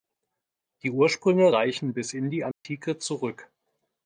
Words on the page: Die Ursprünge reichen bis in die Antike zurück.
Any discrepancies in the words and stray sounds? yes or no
yes